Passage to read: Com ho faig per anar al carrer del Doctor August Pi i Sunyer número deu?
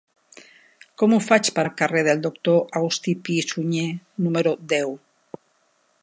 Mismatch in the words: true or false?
true